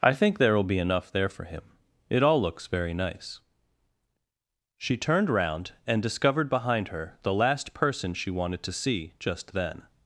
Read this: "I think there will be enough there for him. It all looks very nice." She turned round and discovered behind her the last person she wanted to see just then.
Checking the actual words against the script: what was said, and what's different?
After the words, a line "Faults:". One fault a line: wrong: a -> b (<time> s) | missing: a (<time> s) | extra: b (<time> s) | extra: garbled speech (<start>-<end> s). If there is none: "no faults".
"I think there will be enough there for him. It all looks very nice." She turned round and discovered behind her the last person she wanted to see just then.
Faults:
no faults